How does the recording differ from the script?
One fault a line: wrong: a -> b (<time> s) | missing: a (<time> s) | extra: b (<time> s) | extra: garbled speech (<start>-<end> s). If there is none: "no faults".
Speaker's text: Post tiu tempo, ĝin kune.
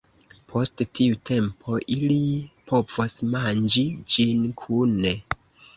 extra: ili povos manĝi (2.0 s)